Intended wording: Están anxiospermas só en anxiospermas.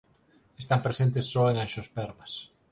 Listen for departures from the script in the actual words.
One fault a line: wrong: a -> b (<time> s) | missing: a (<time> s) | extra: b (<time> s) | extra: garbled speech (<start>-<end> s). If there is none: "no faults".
wrong: anxiospermas -> presentes (0.8 s)